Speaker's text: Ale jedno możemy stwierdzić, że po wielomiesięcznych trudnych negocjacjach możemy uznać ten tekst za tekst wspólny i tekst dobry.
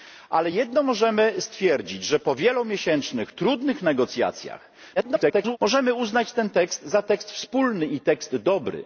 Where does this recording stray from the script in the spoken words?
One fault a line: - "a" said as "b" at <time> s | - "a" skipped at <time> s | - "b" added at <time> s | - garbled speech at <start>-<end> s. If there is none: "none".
- garbled speech at 5.0-5.6 s